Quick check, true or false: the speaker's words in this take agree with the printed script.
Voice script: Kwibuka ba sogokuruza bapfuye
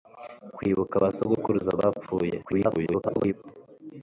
false